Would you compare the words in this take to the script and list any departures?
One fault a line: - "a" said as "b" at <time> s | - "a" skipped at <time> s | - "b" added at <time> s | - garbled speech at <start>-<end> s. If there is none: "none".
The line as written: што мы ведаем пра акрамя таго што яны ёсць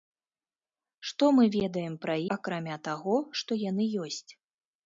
none